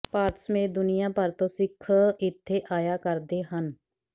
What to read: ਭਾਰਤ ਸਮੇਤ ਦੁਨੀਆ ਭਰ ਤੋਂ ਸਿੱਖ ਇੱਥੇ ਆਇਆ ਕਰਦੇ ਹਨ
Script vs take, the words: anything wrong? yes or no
no